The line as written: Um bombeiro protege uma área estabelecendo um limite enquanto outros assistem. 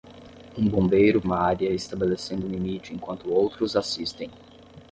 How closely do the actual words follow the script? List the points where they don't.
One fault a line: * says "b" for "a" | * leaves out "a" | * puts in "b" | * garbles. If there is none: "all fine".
* leaves out "protege"